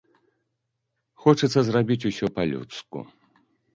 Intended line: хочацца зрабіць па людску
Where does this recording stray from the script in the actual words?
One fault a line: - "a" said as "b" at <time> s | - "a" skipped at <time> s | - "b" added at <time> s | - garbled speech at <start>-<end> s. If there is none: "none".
- "усё" added at 2.1 s